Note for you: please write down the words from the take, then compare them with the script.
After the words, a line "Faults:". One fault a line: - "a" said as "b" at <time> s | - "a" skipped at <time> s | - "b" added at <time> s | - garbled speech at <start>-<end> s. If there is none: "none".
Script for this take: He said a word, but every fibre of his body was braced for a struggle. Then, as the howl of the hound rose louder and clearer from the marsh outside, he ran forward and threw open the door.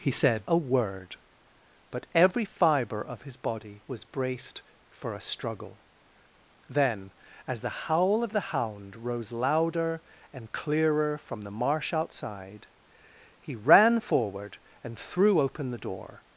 He said a word, but every fibre of his body was braced for a struggle. Then, as the howl of the hound rose louder and clearer from the marsh outside, he ran forward and threw open the door.
Faults:
none